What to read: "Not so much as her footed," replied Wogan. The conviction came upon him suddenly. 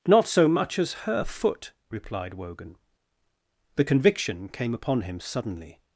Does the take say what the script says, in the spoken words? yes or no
no